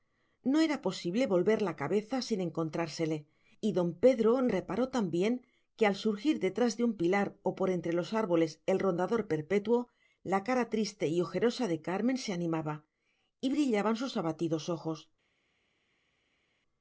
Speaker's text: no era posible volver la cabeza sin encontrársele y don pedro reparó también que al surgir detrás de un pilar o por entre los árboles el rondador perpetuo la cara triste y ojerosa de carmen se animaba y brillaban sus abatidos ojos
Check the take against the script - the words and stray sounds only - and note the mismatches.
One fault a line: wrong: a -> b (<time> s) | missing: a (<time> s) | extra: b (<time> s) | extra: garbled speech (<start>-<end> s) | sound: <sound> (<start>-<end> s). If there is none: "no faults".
no faults